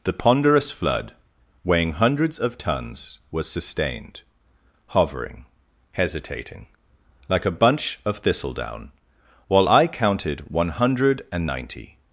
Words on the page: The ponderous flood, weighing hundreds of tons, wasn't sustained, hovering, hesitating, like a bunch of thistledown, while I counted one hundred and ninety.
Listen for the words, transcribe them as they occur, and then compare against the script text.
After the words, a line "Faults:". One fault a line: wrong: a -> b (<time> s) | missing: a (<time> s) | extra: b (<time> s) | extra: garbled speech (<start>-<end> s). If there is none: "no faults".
The ponderous flood, weighing hundreds of tons, was sustained, hovering, hesitating, like a bunch of thistledown, while I counted one hundred and ninety.
Faults:
wrong: wasn't -> was (3.3 s)